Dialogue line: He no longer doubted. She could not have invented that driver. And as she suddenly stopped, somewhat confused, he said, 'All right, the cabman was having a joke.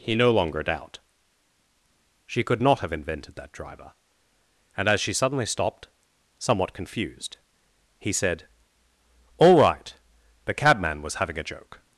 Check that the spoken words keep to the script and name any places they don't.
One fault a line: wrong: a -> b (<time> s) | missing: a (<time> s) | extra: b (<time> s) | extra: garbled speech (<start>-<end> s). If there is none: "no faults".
wrong: doubted -> doubt (0.6 s)